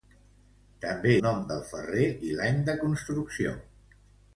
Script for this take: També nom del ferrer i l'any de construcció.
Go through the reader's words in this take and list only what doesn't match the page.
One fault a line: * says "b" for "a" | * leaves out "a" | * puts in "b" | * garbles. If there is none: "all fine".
all fine